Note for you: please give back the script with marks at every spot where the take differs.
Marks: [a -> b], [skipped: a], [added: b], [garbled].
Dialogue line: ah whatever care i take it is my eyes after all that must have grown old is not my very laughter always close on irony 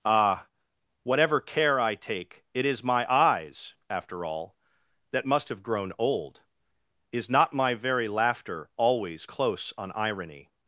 ah whatever care i take it is my eyes after all that must have grown old is not my very laughter always close on irony